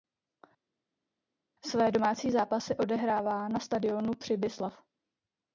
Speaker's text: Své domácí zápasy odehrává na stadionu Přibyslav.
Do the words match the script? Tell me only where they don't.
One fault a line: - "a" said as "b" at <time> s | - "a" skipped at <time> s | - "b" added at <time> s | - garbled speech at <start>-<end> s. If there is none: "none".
none